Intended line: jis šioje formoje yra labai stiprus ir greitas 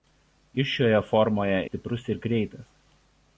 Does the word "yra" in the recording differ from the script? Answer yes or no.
yes